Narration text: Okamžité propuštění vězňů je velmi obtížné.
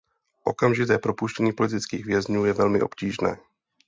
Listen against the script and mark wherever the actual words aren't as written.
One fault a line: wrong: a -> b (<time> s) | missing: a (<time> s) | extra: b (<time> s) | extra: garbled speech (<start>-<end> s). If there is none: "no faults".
extra: politických (1.5 s)